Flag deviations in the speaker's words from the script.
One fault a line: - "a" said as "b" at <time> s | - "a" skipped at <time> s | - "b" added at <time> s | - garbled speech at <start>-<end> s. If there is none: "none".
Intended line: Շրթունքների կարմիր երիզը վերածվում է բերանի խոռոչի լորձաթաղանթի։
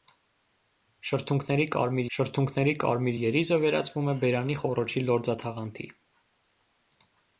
- "շրթունքների կարմիր" added at 2.2 s